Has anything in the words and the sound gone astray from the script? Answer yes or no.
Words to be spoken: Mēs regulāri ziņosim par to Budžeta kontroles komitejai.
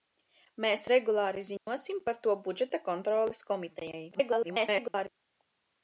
yes